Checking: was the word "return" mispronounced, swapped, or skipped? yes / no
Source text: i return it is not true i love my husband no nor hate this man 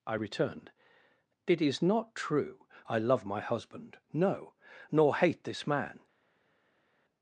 yes